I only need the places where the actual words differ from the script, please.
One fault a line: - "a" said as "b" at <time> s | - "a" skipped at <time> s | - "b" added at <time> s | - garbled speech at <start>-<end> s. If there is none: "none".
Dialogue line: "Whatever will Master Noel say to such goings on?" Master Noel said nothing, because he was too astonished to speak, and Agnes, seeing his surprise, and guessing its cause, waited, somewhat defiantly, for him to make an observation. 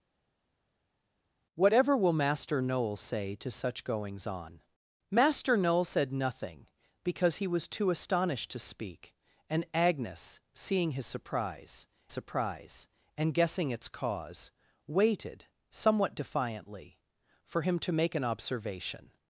- "surprise" added at 12.1 s